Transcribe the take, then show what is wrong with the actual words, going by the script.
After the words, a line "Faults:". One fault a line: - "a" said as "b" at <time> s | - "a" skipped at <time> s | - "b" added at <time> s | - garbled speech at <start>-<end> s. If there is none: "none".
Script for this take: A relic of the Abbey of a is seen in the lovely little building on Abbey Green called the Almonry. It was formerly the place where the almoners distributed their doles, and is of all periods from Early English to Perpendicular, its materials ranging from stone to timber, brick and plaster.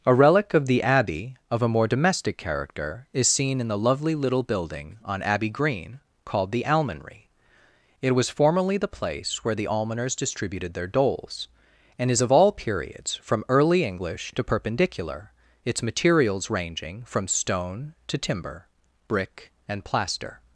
A relic of the Abbey of a more domestic character is seen in the lovely little building on Abbey Green called the Almonry. It was formerly the place where the almoners distributed their doles, and is of all periods from Early English to Perpendicular, its materials ranging from stone to timber, brick and plaster.
Faults:
- "more domestic character" added at 1.7 s